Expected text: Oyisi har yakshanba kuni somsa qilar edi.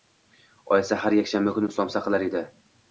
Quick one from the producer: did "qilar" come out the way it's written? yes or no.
yes